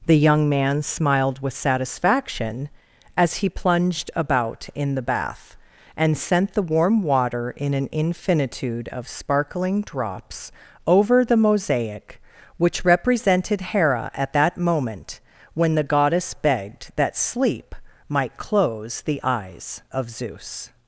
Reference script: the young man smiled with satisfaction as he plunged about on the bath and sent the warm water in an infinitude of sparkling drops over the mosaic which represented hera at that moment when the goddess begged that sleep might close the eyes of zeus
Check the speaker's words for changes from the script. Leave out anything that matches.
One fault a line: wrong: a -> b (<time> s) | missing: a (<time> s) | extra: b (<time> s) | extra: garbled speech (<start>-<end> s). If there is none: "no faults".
wrong: on -> in (4.7 s)